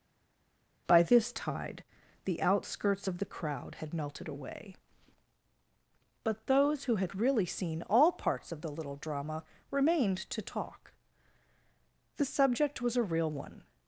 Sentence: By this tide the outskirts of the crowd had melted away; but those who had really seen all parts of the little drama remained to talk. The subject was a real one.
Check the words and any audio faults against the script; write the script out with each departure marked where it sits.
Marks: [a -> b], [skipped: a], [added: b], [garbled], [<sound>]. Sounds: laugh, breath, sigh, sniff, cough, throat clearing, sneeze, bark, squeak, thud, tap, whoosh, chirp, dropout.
By this tide the outskirts of the crowd had melted away; but those who had really seen all parts of the little drama remained to talk. The subject was a real one.